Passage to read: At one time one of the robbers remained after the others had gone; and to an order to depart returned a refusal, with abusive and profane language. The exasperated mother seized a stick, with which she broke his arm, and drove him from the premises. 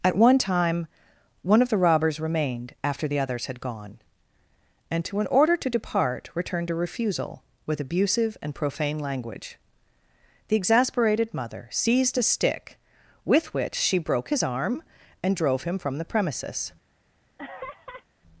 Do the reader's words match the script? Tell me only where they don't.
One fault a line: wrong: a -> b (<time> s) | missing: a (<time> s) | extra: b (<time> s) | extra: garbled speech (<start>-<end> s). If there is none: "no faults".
no faults